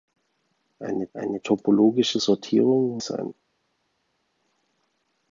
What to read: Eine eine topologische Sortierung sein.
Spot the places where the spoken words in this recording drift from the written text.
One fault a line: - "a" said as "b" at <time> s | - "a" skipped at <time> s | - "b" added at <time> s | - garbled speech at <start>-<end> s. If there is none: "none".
none